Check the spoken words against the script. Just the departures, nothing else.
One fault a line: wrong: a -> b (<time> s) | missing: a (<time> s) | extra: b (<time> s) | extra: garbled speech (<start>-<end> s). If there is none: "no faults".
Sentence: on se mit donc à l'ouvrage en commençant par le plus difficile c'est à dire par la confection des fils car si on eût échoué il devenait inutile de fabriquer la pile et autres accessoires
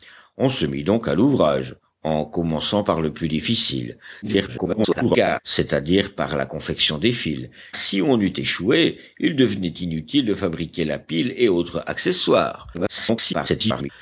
extra: garbled speech (4.2-5.4 s)
missing: car (7.5 s)
extra: garbled speech (12.7-13.9 s)